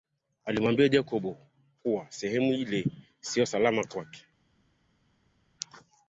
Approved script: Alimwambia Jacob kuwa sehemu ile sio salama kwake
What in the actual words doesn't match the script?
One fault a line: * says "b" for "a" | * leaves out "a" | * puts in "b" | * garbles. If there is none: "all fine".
all fine